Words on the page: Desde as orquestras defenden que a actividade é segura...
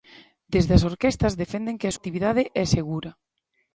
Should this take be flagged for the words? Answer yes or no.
no